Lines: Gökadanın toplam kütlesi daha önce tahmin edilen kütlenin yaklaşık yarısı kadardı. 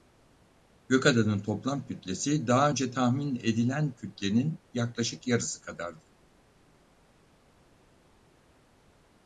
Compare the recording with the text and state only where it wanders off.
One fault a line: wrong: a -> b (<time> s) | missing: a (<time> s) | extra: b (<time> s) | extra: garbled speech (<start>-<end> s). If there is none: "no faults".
no faults